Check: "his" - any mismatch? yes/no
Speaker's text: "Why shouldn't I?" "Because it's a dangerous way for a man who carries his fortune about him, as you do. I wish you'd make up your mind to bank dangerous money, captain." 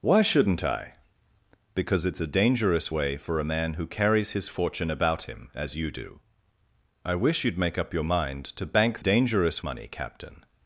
no